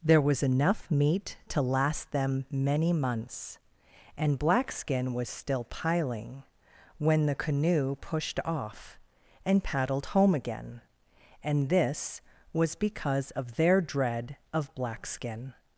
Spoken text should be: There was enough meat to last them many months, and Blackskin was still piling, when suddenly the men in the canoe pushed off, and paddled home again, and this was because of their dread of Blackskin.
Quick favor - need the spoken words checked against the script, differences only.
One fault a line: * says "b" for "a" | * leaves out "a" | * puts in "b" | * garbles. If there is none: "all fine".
* leaves out "suddenly the men in"